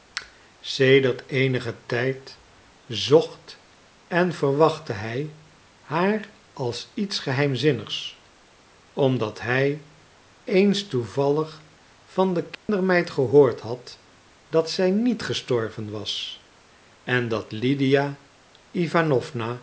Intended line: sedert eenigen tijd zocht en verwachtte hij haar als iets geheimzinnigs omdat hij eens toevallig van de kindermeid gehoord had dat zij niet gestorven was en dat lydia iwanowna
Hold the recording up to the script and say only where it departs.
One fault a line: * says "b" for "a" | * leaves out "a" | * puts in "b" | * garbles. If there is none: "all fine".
all fine